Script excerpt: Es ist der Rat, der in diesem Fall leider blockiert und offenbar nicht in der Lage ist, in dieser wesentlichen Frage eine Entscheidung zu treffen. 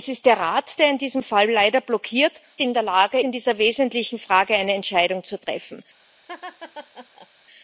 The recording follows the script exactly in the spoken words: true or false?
false